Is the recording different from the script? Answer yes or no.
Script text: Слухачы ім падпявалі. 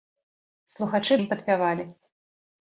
no